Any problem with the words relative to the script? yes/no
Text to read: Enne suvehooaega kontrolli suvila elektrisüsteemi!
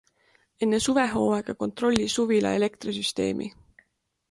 no